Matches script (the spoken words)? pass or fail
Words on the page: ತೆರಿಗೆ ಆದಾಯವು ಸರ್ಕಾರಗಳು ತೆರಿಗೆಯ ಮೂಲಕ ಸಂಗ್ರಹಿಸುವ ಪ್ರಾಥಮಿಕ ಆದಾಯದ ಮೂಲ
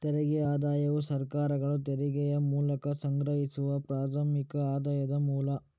pass